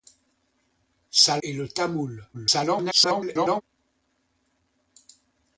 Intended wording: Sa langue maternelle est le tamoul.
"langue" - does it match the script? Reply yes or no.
no